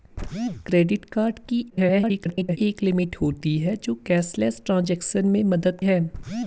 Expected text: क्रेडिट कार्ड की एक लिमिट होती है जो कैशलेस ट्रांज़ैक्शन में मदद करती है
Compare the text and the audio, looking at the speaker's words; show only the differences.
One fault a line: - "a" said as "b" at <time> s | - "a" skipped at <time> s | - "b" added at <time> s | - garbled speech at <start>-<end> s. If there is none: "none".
- garbled speech at 1.7-2.6 s
- "करती" skipped at 5.8 s